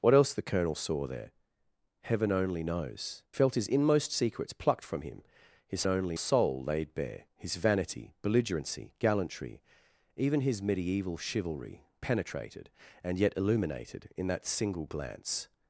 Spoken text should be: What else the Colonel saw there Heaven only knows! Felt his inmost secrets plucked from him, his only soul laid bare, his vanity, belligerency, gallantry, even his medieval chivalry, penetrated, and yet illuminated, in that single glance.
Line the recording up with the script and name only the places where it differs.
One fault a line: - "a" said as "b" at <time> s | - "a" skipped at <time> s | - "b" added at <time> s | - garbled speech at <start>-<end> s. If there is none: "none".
none